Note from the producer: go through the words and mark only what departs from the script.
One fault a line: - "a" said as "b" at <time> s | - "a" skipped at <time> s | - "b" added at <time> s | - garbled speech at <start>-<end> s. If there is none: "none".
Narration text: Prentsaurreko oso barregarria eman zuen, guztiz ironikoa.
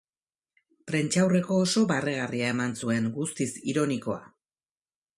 none